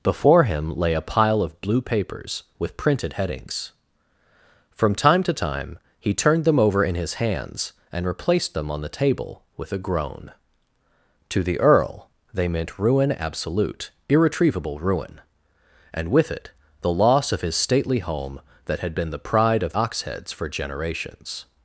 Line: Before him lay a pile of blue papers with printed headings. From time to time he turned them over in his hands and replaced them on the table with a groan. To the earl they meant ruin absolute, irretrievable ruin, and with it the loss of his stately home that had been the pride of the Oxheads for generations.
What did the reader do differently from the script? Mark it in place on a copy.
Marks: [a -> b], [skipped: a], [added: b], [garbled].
Before him lay a pile of blue papers with printed headings. From time to time he turned them over in his hands and replaced them on the table with a groan. To the earl they meant ruin absolute, irretrievable ruin, and with it the loss of his stately home that had been the pride of [skipped: the] Oxheads for generations.